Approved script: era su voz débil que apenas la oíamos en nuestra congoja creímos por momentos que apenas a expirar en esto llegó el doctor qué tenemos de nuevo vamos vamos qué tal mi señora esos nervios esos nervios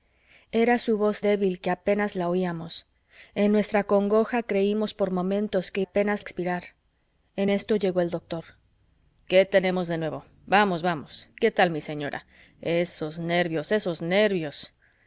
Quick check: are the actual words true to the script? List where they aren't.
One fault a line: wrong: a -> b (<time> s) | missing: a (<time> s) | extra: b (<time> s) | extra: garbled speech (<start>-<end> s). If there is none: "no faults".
no faults